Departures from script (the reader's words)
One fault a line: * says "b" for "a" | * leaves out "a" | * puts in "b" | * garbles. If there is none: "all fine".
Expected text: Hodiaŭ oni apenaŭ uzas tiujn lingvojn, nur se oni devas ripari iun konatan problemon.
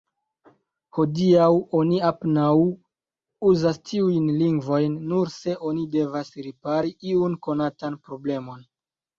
all fine